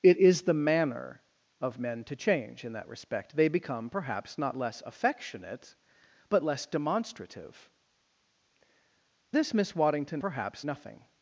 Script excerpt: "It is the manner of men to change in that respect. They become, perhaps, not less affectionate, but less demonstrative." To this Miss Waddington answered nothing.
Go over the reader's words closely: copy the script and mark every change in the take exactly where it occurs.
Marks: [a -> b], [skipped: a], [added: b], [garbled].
"It is the manner of men to change in that respect. They become, perhaps, not less affectionate, but less demonstrative." [skipped: To] this Miss Waddington [answered -> perhaps] nothing.